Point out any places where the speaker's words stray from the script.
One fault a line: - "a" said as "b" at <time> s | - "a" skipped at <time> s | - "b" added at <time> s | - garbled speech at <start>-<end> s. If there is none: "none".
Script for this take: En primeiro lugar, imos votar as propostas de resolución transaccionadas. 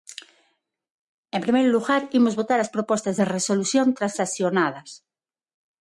none